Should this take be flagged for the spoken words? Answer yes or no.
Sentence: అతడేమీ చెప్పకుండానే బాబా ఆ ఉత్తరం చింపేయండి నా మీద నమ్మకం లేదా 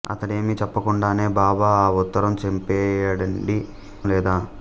yes